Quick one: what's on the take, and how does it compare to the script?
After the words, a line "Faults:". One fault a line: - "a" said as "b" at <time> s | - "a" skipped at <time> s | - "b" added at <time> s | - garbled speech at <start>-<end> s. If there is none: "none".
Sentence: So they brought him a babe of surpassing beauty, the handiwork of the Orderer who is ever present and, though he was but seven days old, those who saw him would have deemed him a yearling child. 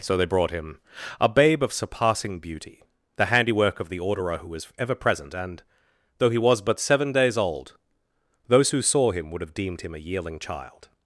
So they brought him a babe of surpassing beauty, the handiwork of the Orderer who was ever present and, though he was but seven days old, those who saw him would have deemed him a yearling child.
Faults:
- "is" said as "was" at 4.5 s